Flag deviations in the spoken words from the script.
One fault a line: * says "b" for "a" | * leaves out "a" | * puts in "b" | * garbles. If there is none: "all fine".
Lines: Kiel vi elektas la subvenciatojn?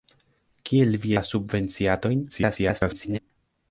* leaves out "elektas"
* garbles